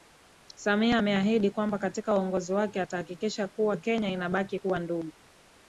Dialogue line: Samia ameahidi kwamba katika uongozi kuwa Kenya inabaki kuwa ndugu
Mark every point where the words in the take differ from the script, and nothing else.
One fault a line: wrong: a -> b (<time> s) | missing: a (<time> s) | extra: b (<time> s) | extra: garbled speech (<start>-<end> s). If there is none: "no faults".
extra: wake atahakikisha (2.5 s)